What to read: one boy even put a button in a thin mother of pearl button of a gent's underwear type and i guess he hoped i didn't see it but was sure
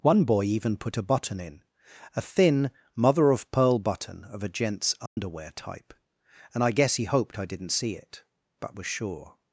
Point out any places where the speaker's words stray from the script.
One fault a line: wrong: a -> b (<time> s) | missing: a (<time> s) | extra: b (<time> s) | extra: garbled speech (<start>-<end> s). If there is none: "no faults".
no faults